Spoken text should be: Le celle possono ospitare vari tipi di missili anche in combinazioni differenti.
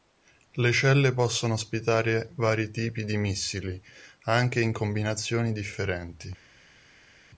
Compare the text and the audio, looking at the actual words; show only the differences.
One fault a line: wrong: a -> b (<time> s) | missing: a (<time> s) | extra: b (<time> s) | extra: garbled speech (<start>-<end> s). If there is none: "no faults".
no faults